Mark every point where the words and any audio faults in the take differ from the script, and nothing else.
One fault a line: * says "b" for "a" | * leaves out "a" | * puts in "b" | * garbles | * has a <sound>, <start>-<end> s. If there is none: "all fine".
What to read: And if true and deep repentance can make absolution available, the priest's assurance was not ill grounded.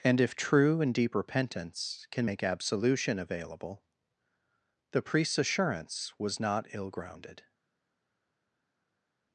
all fine